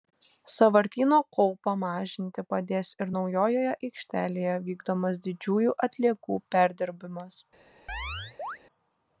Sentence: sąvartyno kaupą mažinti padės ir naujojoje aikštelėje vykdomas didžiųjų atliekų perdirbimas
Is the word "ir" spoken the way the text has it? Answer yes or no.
yes